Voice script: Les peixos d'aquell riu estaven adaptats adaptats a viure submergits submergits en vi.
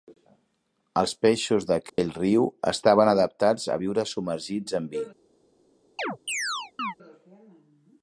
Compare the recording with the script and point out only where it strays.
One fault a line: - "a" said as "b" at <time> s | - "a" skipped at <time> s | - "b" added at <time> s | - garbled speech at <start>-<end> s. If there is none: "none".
- "Les" said as "Els" at 1.0 s
- "adaptats" skipped at 3.7 s
- "submergits" skipped at 4.8 s